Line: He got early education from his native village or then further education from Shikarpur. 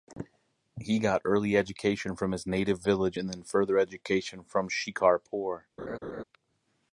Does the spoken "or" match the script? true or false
false